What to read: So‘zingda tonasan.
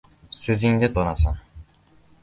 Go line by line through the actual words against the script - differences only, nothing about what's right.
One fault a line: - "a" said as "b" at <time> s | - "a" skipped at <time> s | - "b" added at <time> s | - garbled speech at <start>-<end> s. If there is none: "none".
none